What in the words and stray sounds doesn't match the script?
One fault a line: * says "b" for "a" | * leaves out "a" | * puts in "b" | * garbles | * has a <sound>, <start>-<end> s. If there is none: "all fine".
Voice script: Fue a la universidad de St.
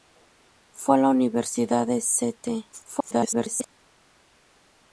* garbles